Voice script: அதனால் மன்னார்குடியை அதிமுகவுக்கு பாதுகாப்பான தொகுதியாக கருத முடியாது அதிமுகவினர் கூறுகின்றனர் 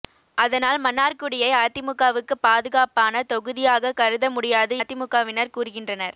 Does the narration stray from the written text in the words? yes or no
no